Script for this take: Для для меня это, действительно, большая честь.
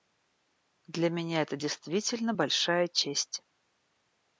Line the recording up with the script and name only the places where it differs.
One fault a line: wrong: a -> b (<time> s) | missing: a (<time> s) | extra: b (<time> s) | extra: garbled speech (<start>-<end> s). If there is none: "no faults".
missing: для (1.1 s)